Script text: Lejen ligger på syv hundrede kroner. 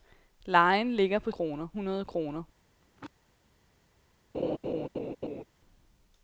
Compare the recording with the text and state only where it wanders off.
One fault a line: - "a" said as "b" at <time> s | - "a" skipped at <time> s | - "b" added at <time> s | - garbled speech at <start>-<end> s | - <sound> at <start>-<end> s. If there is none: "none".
- "syv" said as "kroner" at 1.3 s
- throat clearing at 2.8-3.1 s
- laugh at 4.3-5.4 s